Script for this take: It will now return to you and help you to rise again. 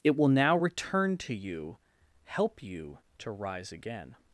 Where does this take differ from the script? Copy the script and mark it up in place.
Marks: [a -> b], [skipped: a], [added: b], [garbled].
It will now return to you [skipped: and] help you to rise again.